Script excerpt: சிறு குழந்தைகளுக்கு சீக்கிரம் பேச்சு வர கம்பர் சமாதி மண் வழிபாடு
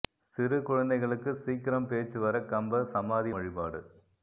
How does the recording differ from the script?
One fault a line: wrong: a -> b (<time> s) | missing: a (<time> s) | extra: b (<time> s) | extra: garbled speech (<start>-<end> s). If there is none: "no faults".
missing: மண் (3.3 s)